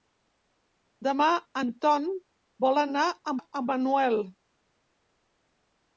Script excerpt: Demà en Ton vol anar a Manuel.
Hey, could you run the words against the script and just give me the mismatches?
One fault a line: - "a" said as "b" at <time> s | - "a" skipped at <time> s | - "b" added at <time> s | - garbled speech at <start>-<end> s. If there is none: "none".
- "a" added at 3.4 s